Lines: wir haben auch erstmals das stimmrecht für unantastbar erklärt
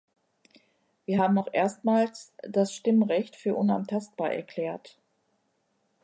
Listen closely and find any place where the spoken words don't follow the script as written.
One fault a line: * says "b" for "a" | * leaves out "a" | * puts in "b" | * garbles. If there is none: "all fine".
all fine